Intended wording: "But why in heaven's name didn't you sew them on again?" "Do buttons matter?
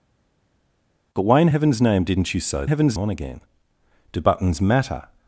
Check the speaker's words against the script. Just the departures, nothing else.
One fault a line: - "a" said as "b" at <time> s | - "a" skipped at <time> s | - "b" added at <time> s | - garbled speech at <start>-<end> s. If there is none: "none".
- "them" said as "heaven's" at 2.6 s